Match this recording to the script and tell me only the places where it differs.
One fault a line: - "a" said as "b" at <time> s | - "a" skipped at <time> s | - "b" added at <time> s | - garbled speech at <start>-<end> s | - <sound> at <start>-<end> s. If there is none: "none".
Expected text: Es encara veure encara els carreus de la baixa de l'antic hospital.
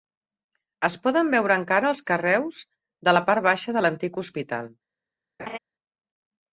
- "encara" said as "poden" at 1.0 s
- "part" added at 3.3 s
- laugh at 5.4-5.6 s